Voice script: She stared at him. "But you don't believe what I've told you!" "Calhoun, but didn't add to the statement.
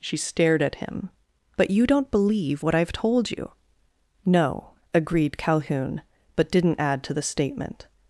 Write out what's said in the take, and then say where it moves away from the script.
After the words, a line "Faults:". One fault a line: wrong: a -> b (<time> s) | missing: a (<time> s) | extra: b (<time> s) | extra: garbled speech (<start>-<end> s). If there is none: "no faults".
She stared at him. "But you don't believe what I've told you!" "No," agreed Calhoun, but didn't add to the statement.
Faults:
extra: No agreed (4.2 s)